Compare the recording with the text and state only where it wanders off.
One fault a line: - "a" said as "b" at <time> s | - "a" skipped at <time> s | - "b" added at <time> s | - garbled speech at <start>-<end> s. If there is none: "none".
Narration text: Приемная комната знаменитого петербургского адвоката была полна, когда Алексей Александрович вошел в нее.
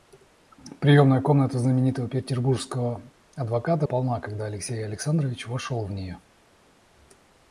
- "была" skipped at 3.9 s